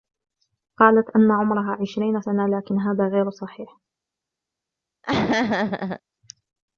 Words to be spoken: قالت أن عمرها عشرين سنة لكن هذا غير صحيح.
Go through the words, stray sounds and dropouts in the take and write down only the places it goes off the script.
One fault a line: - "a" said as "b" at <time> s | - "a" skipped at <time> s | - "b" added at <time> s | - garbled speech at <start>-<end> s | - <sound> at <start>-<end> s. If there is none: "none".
- laugh at 5.0-6.0 s